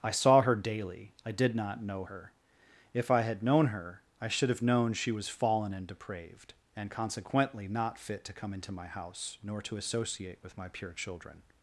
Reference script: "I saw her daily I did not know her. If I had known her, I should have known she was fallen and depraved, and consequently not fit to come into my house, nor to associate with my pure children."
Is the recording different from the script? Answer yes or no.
no